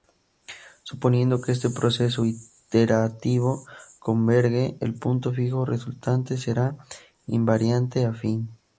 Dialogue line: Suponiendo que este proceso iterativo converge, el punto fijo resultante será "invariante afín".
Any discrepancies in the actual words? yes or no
no